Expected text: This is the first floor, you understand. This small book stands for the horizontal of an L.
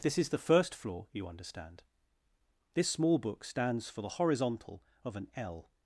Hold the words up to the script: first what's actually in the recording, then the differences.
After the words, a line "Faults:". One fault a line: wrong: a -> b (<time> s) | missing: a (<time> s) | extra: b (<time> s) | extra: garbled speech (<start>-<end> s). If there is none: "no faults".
This is the first floor, you understand. This small book stands for the horizontal of an L.
Faults:
no faults